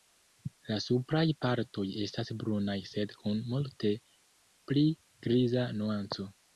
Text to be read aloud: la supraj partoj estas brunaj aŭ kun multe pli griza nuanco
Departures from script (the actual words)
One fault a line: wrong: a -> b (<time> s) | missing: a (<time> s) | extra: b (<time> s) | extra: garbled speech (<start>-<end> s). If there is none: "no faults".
wrong: aŭ -> sed (3.0 s)